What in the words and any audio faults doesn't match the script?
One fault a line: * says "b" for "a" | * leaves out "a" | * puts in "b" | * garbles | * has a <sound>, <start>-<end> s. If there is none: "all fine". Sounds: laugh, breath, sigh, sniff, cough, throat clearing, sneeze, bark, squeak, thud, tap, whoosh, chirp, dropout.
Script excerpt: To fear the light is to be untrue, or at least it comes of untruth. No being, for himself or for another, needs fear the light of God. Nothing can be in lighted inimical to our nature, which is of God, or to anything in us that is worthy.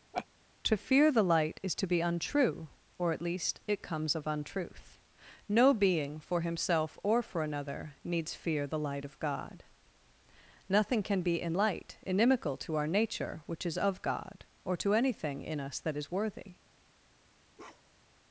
* has a laugh, 0.1-0.3 s
* says "light" for "lighted"
* has a bark, 17.6-18.2 s